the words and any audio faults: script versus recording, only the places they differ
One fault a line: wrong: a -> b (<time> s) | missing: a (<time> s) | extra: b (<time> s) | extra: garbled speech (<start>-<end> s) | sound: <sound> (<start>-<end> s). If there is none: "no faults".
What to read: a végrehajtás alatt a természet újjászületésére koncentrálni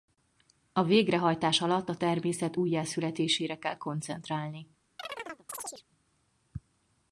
extra: kell (3.6 s)
sound: chirp (5.0-5.8 s)